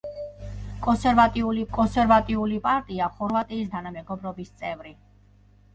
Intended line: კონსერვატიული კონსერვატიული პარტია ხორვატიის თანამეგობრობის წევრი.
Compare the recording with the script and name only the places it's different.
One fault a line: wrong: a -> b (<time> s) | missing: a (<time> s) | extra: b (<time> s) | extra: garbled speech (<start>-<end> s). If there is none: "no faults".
no faults